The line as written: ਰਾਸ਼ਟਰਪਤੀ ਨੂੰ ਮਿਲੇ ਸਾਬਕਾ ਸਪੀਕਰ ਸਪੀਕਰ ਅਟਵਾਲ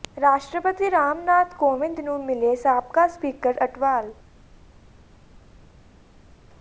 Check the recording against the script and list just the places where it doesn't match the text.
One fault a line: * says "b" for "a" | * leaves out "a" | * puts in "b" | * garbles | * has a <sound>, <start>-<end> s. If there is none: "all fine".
* puts in "ਰਾਮ ਨਾਥ ਕੋਵਿੰਦ"
* leaves out "ਸਪੀਕਰ"